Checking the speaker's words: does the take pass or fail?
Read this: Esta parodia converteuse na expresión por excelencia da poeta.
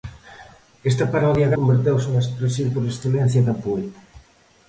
pass